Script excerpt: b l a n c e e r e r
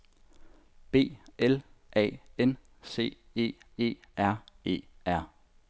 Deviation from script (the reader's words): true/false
false